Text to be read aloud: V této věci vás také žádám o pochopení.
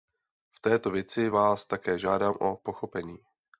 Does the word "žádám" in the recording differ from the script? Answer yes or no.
no